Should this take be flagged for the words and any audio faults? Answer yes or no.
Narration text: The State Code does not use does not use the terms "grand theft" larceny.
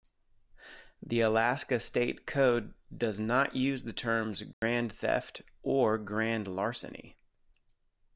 yes